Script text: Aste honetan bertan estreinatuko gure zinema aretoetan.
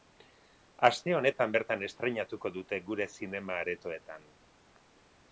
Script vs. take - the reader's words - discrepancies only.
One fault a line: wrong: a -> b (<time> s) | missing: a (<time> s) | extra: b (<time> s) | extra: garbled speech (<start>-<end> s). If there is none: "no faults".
extra: dute (2.6 s)